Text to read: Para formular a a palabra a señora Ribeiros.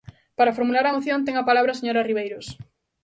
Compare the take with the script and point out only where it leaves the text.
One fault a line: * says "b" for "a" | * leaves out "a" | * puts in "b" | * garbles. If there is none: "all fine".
* puts in "moción ten"